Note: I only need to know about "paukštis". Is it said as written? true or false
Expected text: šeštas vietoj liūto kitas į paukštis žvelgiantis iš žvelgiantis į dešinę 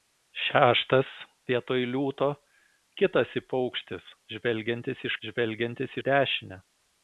true